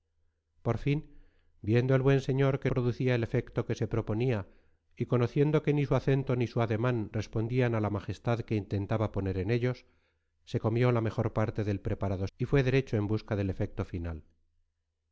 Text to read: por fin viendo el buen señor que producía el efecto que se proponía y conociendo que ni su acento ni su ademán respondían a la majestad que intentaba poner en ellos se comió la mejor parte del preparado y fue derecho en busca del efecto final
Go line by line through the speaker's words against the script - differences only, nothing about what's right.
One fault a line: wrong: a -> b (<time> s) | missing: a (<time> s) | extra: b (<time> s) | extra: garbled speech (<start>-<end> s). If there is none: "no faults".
no faults